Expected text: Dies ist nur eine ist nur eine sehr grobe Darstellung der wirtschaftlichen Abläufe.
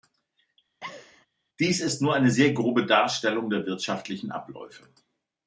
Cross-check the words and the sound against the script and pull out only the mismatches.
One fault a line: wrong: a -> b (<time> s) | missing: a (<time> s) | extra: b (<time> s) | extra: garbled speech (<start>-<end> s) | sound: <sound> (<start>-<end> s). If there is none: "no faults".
sound: laugh (0.8-1.3 s)
missing: ist nur eine (2.3 s)